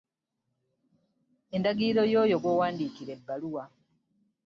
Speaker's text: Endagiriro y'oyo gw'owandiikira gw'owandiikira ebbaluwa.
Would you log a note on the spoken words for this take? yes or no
yes